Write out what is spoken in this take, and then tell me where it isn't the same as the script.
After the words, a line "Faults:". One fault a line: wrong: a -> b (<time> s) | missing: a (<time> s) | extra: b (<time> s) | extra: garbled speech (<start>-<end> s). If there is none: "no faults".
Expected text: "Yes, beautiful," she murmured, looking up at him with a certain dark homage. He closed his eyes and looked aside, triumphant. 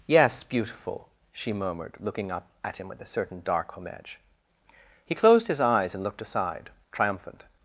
"Yes, beautiful," she murmured, looking up at him with a certain dark homage. He closed his eyes and looked aside, triumphant.
Faults:
no faults